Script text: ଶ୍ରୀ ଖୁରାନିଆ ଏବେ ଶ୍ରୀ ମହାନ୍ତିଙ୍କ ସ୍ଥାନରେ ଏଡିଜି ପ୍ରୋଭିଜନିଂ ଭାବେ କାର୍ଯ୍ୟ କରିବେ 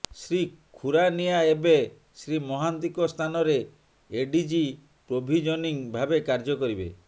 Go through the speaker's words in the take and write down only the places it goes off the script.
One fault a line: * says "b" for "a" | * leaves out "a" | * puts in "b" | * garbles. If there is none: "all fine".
all fine